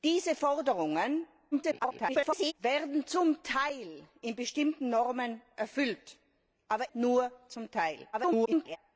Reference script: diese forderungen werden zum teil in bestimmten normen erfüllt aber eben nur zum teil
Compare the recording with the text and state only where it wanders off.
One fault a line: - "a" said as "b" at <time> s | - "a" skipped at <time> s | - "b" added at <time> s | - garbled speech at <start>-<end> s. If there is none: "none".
- garbled speech at 1.5-2.5 s
- "eben" skipped at 6.9 s
- garbled speech at 8.1-8.8 s